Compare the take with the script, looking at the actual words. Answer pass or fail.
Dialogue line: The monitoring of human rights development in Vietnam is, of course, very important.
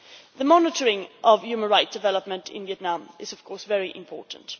pass